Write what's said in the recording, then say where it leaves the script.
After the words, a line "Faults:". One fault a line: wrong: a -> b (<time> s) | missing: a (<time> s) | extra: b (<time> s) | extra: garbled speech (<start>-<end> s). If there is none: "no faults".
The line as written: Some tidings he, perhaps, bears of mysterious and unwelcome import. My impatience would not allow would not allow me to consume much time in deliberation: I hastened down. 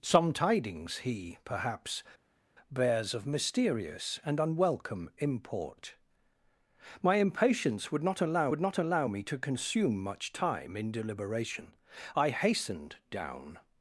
Some tidings he, perhaps, bears of mysterious and unwelcome import. My impatience would not allow would not allow me to consume much time in deliberation: I hastened down.
Faults:
no faults